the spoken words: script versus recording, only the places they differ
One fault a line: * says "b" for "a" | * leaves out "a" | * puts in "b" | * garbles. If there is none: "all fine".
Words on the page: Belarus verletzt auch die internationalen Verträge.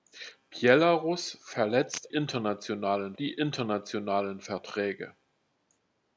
* says "internationalen" for "auch"